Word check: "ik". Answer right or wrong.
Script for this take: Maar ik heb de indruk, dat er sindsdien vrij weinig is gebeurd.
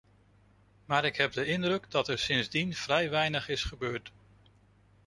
right